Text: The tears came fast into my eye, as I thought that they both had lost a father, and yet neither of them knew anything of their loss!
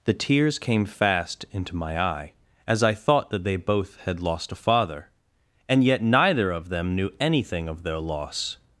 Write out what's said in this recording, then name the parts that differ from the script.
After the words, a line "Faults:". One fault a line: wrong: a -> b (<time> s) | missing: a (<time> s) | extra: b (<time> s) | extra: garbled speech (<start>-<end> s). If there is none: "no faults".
The tears came fast into my eye, as I thought that they both had lost a father, and yet neither of them knew anything of their loss!
Faults:
no faults